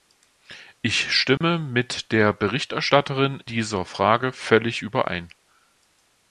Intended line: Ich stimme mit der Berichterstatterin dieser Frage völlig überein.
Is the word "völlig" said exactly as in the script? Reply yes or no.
yes